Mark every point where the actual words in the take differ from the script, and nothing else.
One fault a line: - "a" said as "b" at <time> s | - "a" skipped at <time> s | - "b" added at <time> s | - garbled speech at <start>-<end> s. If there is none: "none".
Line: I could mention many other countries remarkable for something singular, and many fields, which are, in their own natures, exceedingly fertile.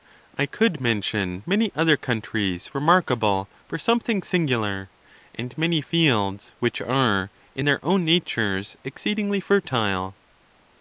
none